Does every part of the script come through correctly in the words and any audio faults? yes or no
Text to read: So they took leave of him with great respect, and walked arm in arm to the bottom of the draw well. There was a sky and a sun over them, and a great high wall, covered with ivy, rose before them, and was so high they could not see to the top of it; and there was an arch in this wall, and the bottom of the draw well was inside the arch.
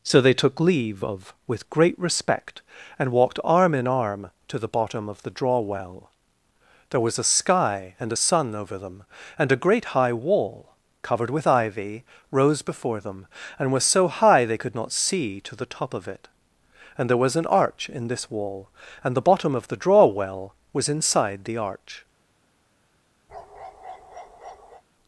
no